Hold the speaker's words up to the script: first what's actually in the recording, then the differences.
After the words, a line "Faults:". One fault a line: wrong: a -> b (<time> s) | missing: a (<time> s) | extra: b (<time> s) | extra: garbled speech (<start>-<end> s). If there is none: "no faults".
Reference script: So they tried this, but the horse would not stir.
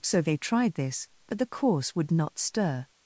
So they tried this, but the course would not stir.
Faults:
wrong: horse -> course (1.5 s)